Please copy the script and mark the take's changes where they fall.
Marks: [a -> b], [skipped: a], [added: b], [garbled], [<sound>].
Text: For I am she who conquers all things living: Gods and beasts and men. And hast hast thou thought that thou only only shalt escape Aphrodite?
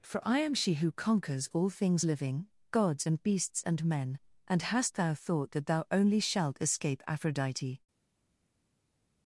For I am she who conquers all things living: Gods and beasts and men. And hast [skipped: hast] thou thought that thou only [skipped: only] shalt escape Aphrodite?